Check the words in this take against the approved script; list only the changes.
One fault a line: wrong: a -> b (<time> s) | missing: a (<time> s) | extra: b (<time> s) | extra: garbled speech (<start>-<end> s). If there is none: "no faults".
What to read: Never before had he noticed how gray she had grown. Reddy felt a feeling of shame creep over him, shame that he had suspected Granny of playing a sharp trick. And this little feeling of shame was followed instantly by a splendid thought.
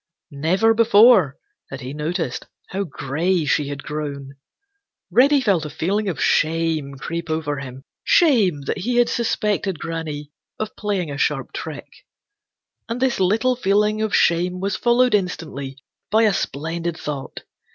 no faults